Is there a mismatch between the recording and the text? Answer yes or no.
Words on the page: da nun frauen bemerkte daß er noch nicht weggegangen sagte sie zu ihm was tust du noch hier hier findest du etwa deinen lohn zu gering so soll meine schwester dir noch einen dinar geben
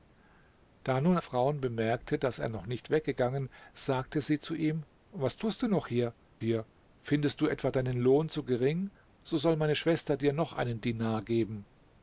no